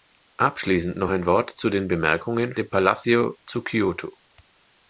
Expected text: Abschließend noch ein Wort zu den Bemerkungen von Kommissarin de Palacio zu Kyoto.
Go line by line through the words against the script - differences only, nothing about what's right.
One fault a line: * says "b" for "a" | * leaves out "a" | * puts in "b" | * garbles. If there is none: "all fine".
* leaves out "von Kommissarin"